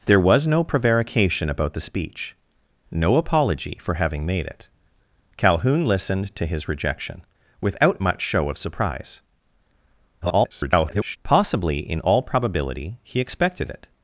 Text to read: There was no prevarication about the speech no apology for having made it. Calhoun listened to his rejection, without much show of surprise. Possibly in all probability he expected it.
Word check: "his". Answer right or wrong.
right